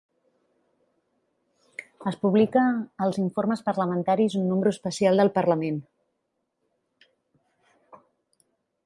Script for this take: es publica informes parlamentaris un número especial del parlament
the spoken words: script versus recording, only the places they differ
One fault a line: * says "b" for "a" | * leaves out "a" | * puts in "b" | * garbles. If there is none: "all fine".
* puts in "als"